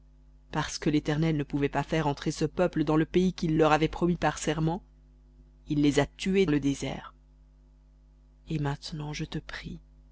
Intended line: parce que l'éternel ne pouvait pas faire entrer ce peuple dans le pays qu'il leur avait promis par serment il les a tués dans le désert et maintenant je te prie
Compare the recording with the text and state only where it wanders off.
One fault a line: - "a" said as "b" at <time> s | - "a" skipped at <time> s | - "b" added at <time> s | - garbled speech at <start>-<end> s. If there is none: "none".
- "dans" skipped at 6.5 s